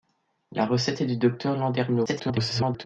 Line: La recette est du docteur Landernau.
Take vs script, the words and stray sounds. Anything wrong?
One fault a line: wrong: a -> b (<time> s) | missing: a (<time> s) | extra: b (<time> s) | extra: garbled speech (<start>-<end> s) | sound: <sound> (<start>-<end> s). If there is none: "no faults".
extra: garbled speech (2.1-2.9 s)